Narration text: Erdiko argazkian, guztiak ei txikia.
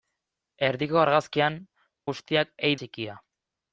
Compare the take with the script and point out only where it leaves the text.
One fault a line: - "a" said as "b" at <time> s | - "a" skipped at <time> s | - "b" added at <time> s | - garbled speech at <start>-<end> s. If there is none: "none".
none